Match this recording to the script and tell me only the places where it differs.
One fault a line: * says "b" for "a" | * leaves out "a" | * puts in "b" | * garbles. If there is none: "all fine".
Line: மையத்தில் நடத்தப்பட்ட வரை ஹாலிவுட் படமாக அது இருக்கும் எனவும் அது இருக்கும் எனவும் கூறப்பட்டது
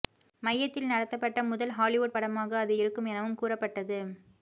* says "முதல்" for "வரை"
* leaves out "அது இருக்கும் எனவும்"